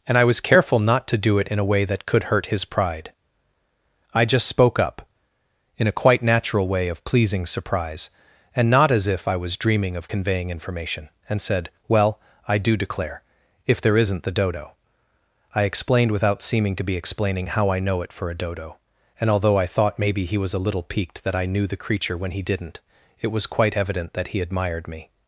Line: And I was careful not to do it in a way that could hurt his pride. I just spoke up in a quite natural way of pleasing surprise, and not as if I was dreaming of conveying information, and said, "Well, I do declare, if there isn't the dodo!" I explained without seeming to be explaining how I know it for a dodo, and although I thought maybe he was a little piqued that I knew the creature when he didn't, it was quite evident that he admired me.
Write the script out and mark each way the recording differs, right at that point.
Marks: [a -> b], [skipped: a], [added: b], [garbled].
And I was careful not to do it in a way that could hurt his pride. I just spoke up in a quite natural way of pleasing surprise, and not as if I was dreaming of conveying information, and said, "Well, I do declare, if there isn't the dodo!" I explained without seeming to be explaining how I know it for a dodo, and although I thought maybe he was a little piqued that I knew the creature when he didn't, it was quite evident that he admired me.